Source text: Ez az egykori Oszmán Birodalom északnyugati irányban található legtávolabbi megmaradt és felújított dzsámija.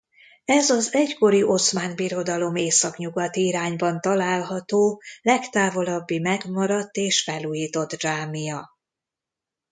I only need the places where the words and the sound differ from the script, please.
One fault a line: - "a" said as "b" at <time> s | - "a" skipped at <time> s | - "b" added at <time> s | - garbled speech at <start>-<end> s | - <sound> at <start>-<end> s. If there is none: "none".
none